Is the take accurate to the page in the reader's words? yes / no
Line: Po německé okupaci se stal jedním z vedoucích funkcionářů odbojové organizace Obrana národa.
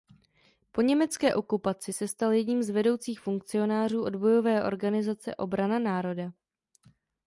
yes